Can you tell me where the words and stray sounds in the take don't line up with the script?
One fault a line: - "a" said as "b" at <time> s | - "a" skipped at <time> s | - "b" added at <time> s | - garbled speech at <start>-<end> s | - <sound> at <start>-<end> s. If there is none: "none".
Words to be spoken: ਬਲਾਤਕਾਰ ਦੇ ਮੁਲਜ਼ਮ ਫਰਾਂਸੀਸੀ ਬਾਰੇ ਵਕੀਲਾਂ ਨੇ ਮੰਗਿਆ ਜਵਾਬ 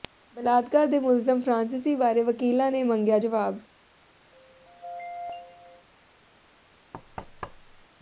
- throat clearing at 4.3-5.9 s
- thud at 6.9-7.9 s